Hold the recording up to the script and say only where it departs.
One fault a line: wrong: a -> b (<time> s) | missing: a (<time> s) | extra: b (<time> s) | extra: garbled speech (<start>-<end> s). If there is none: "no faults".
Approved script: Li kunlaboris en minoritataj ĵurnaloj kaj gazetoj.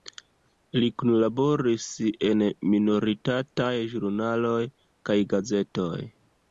no faults